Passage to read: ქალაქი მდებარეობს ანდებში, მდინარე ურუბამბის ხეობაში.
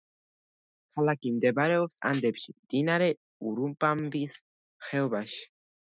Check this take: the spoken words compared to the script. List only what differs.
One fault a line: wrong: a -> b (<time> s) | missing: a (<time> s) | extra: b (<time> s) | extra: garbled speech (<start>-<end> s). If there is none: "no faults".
no faults